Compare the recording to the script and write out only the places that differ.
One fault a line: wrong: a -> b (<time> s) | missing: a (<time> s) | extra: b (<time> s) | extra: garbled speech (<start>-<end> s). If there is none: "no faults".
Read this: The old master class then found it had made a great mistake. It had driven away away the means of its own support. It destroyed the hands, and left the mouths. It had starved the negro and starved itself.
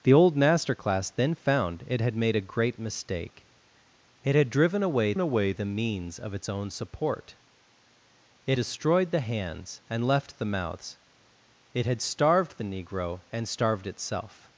no faults